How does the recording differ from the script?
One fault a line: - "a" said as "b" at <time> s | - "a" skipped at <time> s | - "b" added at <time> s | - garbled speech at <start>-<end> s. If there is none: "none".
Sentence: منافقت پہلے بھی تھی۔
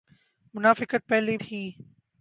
- "بھی" skipped at 1.4 s